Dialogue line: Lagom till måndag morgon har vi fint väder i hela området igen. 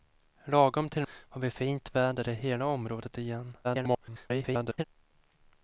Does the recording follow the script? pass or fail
fail